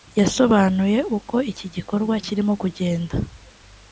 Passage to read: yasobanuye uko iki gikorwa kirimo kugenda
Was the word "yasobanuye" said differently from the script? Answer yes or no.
no